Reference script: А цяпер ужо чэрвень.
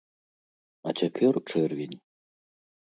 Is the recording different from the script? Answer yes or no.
yes